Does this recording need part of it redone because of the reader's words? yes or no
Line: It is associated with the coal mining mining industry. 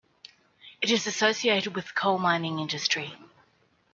yes